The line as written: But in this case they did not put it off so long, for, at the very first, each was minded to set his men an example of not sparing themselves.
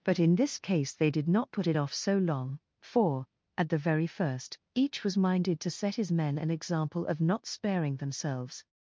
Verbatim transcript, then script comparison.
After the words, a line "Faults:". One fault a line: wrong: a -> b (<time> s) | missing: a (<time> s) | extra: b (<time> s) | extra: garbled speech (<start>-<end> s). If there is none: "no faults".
But in this case they did not put it off so long, for, at the very first, each was minded to set his men an example of not sparing themselves.
Faults:
no faults